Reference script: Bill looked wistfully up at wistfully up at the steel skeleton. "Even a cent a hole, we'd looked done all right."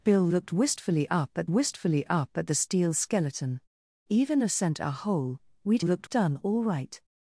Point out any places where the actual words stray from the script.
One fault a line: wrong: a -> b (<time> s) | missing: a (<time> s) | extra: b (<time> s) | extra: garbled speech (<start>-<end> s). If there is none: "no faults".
no faults